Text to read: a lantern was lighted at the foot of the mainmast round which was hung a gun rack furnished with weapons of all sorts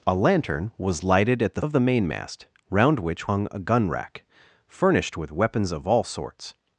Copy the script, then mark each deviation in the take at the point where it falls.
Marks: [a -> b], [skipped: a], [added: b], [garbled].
a lantern was lighted at the [skipped: foot] of the mainmast round which [skipped: was] hung a gun rack furnished with weapons of all sorts